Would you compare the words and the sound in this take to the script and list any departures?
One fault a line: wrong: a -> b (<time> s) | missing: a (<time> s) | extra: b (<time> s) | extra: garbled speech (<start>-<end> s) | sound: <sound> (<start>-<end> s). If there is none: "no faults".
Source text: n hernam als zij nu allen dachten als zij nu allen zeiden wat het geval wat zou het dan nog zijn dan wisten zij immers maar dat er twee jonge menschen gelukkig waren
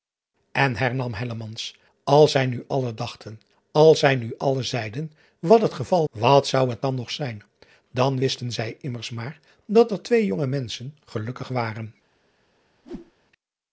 sound: whoosh (12.8-13.1 s)